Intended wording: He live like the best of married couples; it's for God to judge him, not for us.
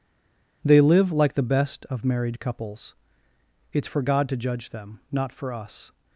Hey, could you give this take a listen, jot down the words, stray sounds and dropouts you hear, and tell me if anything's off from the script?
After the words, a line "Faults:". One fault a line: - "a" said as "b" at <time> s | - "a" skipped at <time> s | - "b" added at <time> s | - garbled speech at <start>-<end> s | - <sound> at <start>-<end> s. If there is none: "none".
They live like the best of married couples; it's for God to judge them, not for us.
Faults:
- "He" said as "They" at 0.6 s
- "him" said as "them" at 4.7 s